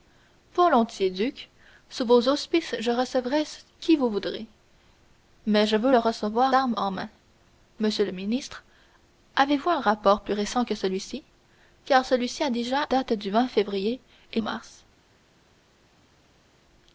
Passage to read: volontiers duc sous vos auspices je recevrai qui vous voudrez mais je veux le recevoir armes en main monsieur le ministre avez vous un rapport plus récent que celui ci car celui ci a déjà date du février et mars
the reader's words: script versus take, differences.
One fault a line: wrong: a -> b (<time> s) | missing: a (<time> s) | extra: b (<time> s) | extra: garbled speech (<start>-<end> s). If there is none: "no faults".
no faults